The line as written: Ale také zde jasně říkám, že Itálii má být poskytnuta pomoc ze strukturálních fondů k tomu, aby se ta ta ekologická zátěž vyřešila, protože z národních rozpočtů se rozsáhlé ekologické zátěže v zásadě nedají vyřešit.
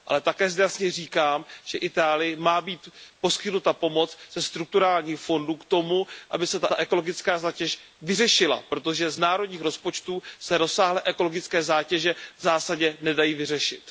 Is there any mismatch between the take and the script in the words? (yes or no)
no